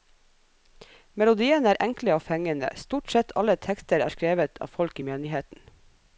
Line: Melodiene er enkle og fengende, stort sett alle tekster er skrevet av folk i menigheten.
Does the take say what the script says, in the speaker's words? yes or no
yes